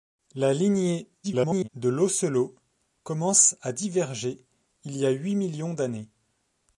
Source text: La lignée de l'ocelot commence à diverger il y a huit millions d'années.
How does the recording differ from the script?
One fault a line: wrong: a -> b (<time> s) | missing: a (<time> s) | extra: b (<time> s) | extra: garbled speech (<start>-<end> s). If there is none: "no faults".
extra: garbled speech (1.2-1.7 s)